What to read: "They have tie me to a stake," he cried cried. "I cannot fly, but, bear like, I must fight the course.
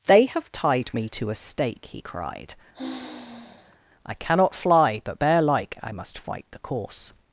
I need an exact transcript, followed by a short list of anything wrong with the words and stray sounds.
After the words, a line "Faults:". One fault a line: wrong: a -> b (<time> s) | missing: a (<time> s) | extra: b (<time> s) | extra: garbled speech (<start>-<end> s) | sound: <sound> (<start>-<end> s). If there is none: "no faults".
"They have tied me to a stake," he cried. "I cannot fly, but, bear like, I must fight the course.
Faults:
wrong: tie -> tied (0.5 s)
missing: cried (2.5 s)
sound: sigh (2.7-3.8 s)